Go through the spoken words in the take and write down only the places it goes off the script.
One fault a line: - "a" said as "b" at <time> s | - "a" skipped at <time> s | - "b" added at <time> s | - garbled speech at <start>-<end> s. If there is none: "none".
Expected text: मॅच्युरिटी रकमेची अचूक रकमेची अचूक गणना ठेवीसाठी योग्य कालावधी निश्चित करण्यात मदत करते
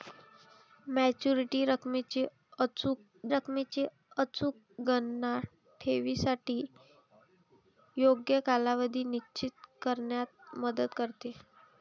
none